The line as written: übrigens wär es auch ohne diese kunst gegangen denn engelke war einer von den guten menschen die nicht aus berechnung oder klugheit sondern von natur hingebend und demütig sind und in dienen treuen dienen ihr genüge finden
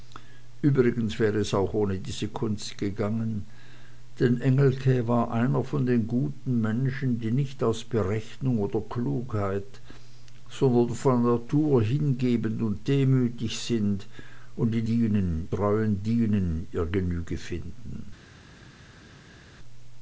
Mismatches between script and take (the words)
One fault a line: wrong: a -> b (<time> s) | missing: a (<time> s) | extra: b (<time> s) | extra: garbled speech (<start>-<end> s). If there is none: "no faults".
no faults